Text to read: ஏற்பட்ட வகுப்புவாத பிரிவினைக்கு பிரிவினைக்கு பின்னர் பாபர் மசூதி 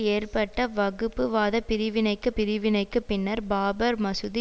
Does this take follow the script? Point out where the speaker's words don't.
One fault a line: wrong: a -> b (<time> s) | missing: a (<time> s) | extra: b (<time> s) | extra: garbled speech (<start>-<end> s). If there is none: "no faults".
no faults